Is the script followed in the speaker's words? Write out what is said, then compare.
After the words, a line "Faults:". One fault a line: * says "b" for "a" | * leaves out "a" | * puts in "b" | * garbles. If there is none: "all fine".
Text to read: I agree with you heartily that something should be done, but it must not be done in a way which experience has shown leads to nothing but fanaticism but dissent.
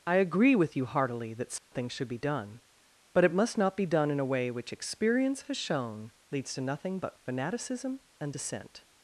I agree with you heartily that something should be done, but it must not be done in a way which experience has shown leads to nothing but fanaticism and dissent.
Faults:
* says "and" for "but"